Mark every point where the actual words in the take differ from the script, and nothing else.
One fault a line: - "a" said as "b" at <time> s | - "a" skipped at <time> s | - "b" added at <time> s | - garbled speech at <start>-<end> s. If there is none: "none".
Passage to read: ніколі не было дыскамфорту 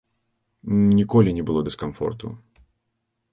none